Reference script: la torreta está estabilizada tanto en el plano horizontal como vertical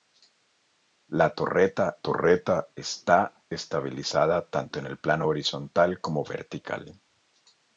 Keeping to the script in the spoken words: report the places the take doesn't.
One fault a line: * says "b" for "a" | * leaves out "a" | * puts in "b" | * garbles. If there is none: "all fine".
* puts in "torreta"